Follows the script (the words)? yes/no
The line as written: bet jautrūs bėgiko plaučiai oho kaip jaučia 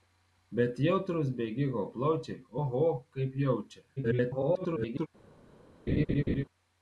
no